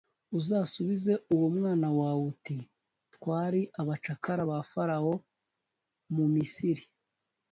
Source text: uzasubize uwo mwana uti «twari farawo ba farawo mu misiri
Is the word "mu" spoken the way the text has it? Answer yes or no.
yes